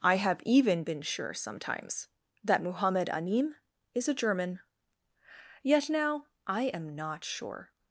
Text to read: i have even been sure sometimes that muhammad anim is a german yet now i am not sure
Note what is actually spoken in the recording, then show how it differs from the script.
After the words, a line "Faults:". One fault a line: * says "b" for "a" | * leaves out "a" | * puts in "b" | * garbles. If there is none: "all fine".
i have even been sure sometimes that muhammad anim is a german yet now i am not sure
Faults:
all fine